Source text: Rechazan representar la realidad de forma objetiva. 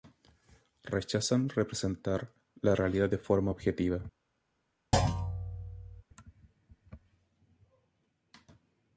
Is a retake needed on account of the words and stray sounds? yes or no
yes